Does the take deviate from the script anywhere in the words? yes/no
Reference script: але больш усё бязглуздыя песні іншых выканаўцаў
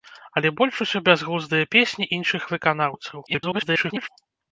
yes